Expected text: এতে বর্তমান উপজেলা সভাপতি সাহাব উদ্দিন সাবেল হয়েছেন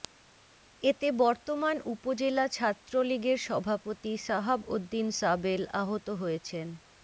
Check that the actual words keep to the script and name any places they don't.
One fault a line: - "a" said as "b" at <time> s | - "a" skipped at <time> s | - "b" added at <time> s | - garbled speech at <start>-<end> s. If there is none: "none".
- "ছাত্রলীগের" added at 2.5 s
- "আহত" added at 5.8 s